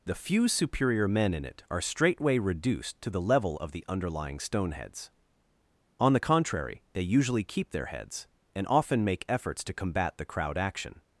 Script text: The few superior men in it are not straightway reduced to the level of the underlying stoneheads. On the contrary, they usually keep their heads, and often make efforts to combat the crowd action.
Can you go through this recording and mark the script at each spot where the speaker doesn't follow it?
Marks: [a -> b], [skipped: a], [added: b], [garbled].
The few superior men in it are [skipped: not] straightway reduced to the level of the underlying stoneheads. On the contrary, they usually keep their heads, and often make efforts to combat the crowd action.